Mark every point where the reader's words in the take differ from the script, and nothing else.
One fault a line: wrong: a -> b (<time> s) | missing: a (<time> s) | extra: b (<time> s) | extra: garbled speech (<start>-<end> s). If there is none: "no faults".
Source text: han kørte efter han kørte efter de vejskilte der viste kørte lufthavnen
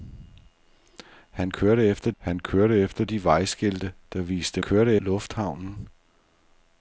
no faults